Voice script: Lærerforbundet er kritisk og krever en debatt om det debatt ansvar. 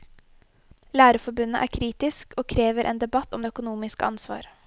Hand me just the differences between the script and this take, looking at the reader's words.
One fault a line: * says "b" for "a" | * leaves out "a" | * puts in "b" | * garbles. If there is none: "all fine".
* says "økonomiske" for "debatt"